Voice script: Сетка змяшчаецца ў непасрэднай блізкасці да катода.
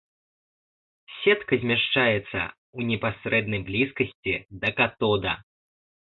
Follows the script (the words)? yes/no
yes